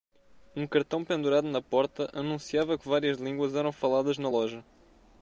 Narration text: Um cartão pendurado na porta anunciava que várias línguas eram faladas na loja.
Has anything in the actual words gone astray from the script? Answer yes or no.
no